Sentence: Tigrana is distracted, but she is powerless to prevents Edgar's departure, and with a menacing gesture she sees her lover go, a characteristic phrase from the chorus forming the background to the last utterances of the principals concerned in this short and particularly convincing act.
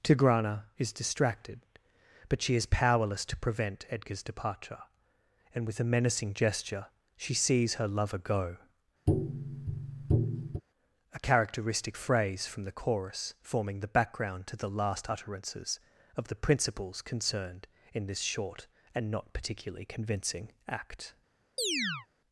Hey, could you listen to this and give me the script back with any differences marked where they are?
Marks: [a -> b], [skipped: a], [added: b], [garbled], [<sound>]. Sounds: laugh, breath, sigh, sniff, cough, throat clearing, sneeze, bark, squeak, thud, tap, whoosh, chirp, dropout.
Tigrana is distracted, but she is powerless to [prevents -> prevent] Edgar's departure, and with a menacing gesture she sees her lover go, [tap] a characteristic phrase from the chorus forming the background to the last utterances of the principals concerned in this short and [added: not] particularly convincing act. [chirp]